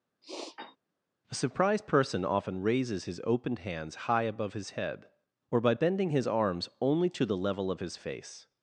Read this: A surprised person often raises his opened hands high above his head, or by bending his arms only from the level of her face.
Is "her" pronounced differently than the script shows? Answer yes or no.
yes